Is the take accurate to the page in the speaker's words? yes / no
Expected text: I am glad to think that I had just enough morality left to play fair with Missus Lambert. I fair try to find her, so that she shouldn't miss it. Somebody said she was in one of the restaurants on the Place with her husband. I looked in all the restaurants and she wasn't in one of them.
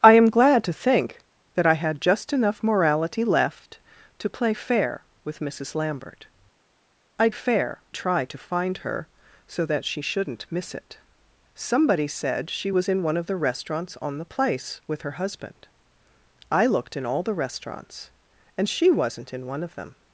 yes